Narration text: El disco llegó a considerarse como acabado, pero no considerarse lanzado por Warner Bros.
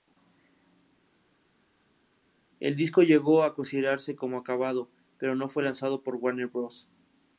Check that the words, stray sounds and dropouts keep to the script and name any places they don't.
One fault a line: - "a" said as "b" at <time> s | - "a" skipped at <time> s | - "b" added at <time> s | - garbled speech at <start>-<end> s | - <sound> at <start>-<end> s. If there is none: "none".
- "considerarse" said as "fue" at 5.5 s